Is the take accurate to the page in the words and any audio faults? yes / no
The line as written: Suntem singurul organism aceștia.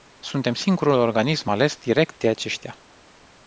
no